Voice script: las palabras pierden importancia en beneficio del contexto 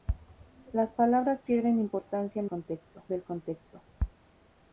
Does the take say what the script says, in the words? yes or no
no